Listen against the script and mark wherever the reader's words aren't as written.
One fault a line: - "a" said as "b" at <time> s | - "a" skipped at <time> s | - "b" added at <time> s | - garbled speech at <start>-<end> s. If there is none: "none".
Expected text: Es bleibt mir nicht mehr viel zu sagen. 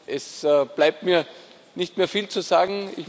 none